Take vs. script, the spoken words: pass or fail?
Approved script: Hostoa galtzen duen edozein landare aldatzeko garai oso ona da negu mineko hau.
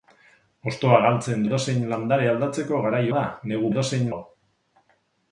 fail